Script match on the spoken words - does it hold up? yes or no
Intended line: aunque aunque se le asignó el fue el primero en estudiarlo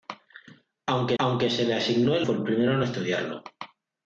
yes